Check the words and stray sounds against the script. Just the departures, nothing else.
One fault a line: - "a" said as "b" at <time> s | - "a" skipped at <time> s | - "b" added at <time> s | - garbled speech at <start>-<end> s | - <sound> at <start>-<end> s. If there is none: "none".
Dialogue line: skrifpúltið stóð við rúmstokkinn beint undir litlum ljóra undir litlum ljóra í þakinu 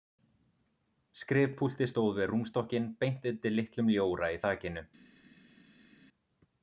- "undir litlum ljóra" skipped at 4.3 s